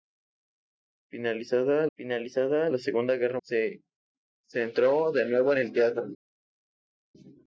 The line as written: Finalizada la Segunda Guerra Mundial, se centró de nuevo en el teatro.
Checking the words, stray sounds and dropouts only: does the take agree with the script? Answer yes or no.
no